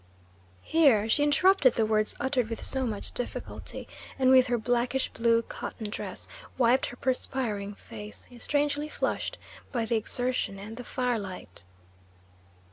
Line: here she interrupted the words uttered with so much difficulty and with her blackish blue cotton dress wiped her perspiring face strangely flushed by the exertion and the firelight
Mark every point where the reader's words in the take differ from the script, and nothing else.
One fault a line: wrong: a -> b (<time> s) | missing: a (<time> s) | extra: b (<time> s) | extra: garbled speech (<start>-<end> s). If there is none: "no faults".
no faults